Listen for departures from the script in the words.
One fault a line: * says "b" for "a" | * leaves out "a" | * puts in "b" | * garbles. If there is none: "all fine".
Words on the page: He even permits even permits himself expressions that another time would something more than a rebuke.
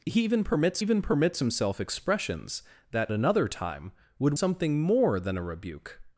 all fine